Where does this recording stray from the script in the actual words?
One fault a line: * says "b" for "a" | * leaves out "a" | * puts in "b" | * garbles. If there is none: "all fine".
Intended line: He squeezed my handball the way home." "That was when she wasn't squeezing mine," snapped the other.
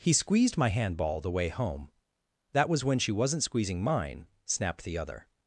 all fine